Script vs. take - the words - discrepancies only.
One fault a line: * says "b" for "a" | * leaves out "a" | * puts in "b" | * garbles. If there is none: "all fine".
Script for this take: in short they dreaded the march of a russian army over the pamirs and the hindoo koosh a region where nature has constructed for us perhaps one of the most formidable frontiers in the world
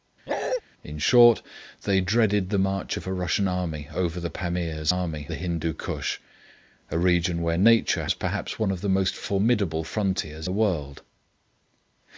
* says "army" for "and"
* leaves out "has constructed for"
* leaves out "in"